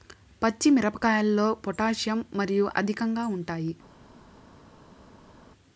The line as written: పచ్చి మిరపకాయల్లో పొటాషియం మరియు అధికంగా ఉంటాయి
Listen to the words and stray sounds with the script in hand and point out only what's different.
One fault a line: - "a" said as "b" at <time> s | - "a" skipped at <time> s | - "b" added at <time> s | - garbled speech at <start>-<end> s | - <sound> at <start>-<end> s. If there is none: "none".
none